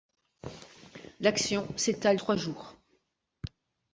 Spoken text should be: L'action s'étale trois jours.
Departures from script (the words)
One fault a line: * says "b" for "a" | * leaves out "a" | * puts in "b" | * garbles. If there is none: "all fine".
all fine